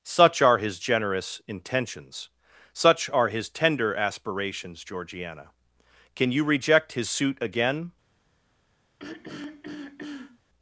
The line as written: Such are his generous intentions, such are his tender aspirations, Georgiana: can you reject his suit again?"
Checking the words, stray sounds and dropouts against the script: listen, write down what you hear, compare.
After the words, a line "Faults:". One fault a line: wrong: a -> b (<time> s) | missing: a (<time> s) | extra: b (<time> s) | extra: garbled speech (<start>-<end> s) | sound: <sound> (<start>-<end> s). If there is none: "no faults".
Such are his generous intentions, such are his tender aspirations, Georgiana: can you reject his suit again?"
Faults:
sound: throat clearing (9.0-10.4 s)